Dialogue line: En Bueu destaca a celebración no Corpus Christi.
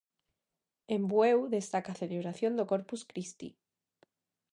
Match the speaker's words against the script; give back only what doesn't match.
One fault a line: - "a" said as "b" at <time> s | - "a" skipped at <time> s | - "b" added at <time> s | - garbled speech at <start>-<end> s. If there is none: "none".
- "no" said as "do" at 2.6 s